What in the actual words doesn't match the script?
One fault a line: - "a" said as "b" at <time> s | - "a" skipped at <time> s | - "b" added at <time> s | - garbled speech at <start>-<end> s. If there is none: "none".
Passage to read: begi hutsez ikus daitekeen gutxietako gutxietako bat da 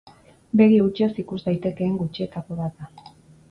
- "gutxietako" skipped at 2.6 s